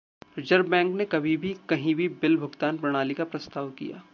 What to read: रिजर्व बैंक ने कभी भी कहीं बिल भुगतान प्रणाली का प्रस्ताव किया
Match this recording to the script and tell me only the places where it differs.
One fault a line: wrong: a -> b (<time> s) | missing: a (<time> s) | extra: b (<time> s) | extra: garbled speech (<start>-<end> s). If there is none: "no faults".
extra: भी (1.9 s)